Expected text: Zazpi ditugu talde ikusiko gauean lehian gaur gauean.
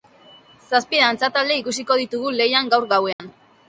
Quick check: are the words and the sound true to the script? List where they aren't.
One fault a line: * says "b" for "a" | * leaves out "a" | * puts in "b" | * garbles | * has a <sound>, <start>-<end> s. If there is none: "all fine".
* says "dantza" for "ditugu"
* says "ditugu" for "gauean"
* has a dropout, 3.1-3.2 s